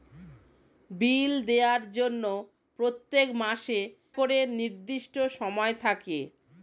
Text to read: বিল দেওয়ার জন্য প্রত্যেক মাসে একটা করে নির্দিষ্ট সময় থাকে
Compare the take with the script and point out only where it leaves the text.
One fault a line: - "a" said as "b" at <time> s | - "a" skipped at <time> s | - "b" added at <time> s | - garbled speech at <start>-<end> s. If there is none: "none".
- "একটা" skipped at 3.8 s